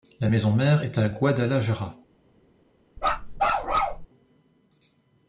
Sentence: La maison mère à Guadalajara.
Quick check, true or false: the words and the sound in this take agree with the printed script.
false